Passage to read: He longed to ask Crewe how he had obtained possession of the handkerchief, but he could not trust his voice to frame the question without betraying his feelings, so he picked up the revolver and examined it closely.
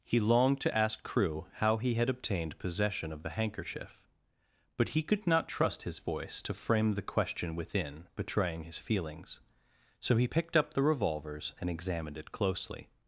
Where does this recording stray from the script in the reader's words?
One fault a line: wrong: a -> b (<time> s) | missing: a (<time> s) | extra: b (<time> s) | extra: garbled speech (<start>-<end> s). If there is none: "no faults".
wrong: without -> within (7.5 s)
wrong: revolver -> revolvers (10.8 s)